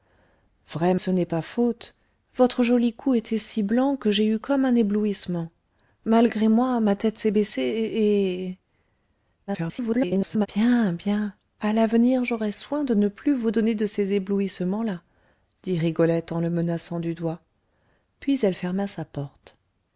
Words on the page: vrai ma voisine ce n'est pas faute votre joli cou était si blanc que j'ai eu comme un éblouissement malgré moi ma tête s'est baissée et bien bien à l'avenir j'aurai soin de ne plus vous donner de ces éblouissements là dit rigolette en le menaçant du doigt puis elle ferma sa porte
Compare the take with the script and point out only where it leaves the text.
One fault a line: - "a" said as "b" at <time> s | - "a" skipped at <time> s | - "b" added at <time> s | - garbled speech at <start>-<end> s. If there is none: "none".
- "ma voisine" skipped at 0.9 s
- garbled speech at 9.5-10.5 s